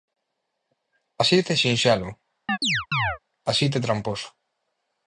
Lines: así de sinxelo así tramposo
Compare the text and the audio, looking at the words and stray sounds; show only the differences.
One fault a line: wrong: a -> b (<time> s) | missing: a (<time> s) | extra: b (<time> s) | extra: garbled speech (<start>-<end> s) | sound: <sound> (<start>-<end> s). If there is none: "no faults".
sound: chirp (2.5-3.2 s)
extra: de (3.7 s)